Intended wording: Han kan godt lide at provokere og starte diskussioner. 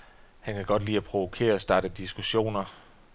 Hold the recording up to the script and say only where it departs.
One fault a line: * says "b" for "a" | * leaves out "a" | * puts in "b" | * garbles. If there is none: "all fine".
all fine